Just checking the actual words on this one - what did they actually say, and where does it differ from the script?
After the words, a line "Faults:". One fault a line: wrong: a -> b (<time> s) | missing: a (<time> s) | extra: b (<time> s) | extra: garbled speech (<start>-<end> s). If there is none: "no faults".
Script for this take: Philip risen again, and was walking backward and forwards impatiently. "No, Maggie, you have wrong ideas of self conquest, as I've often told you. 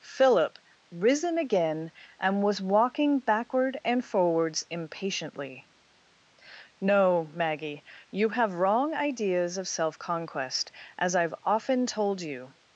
Philip risen again, and was walking backward and forwards impatiently. "No, Maggie, you have wrong ideas of self conquest, as I've often told you.
Faults:
no faults